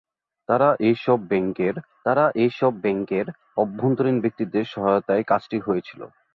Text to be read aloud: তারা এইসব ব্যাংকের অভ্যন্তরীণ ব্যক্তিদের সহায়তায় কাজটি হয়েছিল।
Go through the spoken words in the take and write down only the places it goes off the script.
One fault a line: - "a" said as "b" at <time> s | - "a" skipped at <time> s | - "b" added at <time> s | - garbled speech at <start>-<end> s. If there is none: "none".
- "তারা এইসব ব্যাংকের" added at 2.1 s